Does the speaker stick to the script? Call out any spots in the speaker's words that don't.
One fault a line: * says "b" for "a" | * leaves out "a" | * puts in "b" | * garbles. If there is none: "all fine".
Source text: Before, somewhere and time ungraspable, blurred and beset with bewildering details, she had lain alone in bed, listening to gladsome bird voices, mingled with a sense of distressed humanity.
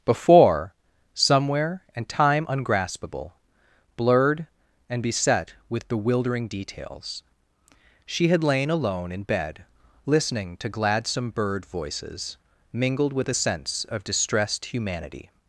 all fine